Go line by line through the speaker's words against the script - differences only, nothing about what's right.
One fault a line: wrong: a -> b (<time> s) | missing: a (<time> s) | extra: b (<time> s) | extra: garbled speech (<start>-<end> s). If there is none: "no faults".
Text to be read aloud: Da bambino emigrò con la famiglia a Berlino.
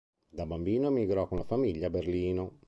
no faults